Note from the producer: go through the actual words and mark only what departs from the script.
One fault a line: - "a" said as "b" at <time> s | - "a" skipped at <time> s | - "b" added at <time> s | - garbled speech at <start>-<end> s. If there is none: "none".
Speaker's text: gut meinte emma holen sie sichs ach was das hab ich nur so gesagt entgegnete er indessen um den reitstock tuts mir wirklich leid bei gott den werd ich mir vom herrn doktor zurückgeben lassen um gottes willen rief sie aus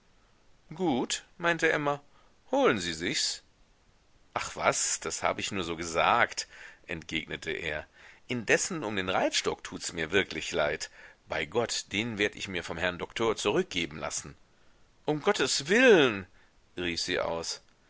none